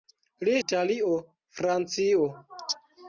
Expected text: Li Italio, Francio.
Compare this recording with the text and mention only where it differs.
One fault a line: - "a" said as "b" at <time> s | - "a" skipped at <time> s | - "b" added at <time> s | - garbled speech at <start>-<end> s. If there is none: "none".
none